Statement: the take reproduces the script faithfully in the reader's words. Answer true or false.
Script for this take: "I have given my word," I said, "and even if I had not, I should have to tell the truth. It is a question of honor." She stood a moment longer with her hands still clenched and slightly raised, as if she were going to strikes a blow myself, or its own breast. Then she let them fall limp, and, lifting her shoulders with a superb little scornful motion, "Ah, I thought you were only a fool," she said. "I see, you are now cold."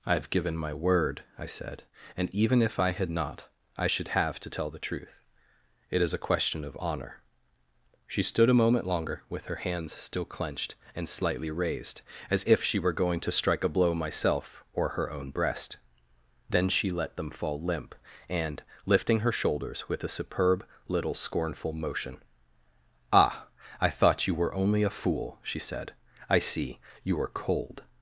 false